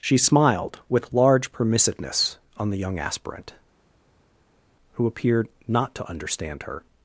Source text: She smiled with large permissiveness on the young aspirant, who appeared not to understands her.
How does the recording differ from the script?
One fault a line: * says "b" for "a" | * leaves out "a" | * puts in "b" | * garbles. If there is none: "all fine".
* says "understand" for "understands"